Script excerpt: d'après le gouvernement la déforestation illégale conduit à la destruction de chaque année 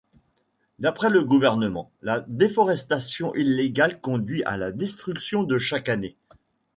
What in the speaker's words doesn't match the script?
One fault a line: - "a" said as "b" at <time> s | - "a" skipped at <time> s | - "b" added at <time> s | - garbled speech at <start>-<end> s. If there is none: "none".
none